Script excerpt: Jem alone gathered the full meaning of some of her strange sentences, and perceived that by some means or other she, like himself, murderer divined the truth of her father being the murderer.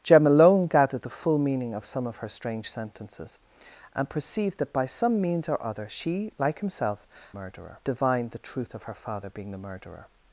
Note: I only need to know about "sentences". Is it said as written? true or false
true